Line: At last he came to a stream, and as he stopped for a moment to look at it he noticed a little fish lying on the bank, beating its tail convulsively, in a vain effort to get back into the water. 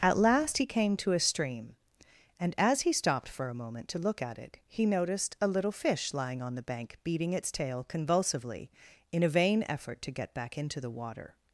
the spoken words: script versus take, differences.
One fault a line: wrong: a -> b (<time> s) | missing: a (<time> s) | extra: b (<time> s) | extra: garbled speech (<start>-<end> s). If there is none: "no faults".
no faults